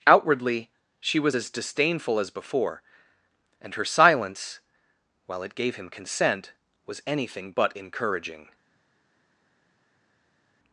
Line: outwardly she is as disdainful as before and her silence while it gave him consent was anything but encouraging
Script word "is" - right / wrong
wrong